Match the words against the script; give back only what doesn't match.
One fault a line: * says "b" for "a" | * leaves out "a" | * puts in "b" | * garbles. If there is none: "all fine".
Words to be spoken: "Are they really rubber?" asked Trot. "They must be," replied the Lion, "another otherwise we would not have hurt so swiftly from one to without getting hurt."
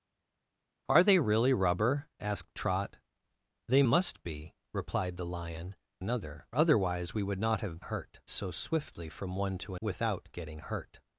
all fine